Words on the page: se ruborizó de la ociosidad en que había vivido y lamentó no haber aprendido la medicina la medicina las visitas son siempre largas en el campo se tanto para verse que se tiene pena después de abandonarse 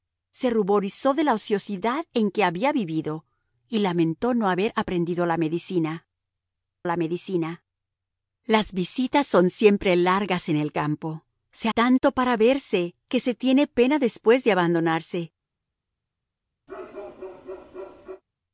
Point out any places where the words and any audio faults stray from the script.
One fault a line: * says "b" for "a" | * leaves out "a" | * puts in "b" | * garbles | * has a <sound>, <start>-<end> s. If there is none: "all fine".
* has a bark, 16.7-18.2 s